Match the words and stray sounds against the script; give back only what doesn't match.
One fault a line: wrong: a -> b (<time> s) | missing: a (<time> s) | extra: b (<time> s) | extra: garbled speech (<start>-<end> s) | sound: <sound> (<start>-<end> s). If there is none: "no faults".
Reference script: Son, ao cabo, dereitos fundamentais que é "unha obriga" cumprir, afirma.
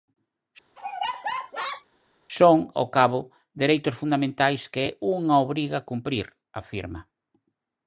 sound: laugh (0.8-1.9 s)